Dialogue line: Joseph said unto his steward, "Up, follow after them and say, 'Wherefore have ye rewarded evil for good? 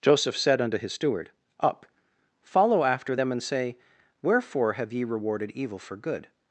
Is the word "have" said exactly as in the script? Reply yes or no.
yes